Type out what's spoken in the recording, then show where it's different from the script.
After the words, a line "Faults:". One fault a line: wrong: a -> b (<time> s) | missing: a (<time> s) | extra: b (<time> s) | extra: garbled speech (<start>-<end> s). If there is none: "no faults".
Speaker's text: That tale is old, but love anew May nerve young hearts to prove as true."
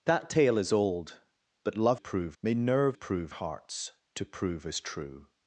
That tale is old, but love prove May nerve prove hearts to prove as true."
Faults:
wrong: anew -> prove (2.0 s)
wrong: young -> prove (2.9 s)